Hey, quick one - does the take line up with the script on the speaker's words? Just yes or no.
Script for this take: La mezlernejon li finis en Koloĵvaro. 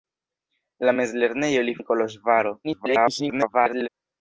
no